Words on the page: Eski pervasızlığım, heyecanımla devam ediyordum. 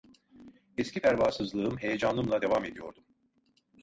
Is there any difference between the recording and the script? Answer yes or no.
no